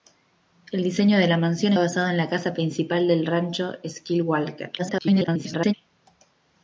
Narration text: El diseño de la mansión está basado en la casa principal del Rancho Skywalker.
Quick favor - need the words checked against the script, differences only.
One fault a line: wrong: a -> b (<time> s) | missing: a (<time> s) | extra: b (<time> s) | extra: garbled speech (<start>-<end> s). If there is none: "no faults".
missing: está (1.7 s)
extra: garbled speech (4.8-5.7 s)